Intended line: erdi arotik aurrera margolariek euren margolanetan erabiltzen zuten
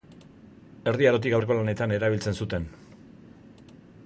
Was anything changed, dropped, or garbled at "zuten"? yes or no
no